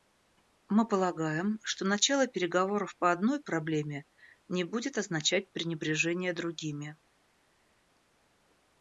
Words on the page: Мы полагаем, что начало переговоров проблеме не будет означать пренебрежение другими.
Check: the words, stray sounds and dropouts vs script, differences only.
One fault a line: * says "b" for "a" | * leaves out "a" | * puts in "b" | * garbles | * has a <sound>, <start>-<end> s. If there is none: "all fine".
* puts in "по одной"